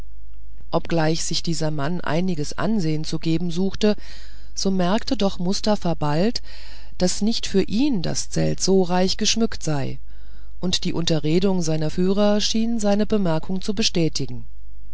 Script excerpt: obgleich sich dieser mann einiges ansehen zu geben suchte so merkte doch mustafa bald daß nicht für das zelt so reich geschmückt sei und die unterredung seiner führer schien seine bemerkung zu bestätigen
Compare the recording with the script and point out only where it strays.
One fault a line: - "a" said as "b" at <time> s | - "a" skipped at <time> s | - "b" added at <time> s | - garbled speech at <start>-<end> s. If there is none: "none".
- "ihn" added at 7.6 s